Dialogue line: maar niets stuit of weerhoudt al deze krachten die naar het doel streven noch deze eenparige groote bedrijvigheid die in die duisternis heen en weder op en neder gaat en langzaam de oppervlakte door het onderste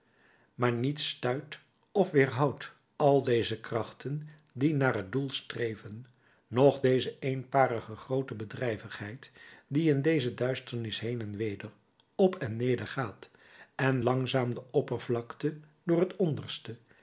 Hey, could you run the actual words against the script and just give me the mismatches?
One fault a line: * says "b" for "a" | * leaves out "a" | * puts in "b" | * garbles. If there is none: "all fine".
* says "deze" for "die"